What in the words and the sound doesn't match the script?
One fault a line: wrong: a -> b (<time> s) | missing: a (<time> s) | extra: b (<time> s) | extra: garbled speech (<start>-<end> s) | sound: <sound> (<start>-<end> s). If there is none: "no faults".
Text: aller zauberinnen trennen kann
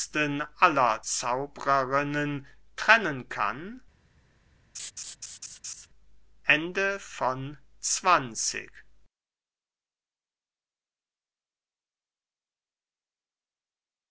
sound: laugh (4.7-5.9 s)